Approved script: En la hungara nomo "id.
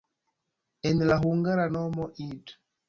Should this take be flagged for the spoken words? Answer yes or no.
no